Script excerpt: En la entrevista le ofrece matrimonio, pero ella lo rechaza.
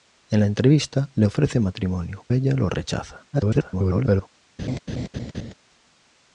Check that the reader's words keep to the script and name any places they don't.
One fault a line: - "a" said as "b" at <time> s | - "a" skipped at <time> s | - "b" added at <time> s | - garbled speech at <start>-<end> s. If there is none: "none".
- "pero" skipped at 2.2 s
- garbled speech at 3.3-4.3 s